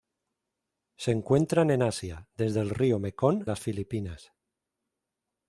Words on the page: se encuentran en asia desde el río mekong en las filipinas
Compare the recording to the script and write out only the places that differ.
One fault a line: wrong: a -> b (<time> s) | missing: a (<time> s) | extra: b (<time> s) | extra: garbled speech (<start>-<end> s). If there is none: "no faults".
missing: en (3.5 s)